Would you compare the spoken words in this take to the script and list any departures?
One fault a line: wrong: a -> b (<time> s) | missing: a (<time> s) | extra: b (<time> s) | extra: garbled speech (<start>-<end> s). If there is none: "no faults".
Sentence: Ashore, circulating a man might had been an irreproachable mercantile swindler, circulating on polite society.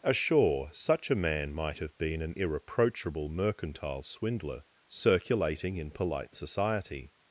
wrong: circulating -> such (0.7 s)
wrong: had -> have (1.8 s)
wrong: on -> in (5.8 s)